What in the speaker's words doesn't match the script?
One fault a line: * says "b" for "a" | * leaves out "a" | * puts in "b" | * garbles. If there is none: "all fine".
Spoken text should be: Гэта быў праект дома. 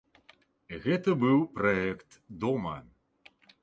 all fine